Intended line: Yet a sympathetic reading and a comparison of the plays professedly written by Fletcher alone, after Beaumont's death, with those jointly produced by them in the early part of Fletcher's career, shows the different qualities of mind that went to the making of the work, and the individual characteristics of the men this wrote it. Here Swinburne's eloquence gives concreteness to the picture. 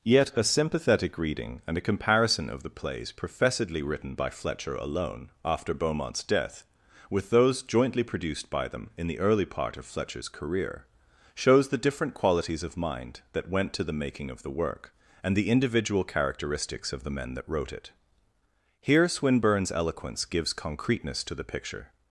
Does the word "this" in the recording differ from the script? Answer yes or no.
yes